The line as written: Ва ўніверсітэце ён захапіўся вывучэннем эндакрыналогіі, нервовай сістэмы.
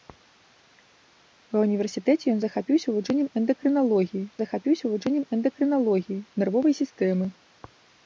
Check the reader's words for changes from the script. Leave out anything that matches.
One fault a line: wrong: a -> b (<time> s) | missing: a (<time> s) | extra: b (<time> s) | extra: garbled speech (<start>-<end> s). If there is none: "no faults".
extra: захапіўся вывучэннем эндакрыналогіі (4.4 s)